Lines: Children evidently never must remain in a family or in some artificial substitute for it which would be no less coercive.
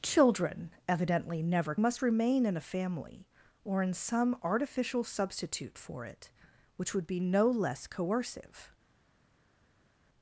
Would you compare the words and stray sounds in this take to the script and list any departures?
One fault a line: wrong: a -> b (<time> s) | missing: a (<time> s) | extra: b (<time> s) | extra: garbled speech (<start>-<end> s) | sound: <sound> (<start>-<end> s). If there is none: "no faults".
no faults